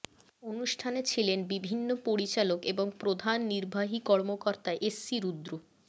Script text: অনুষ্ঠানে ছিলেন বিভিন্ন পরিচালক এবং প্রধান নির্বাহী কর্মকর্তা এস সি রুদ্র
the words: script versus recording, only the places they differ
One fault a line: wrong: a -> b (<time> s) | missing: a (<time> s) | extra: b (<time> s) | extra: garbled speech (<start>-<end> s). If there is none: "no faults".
no faults